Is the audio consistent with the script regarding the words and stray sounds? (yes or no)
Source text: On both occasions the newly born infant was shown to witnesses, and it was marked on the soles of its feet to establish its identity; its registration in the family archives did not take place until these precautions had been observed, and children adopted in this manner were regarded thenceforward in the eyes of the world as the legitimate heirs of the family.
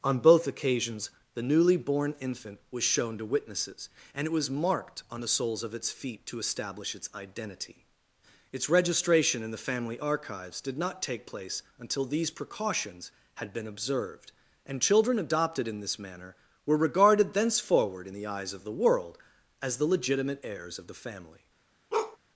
no